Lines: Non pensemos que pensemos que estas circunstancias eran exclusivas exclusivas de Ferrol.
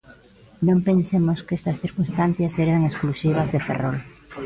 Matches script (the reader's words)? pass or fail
fail